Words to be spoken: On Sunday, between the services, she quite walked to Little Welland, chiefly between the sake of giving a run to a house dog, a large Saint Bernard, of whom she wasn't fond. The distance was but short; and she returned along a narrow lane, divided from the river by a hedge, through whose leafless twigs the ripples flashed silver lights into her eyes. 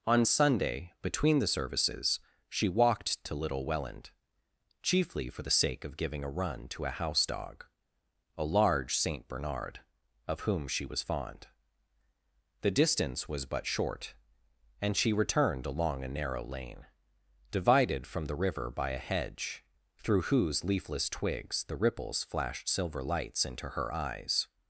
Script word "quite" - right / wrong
wrong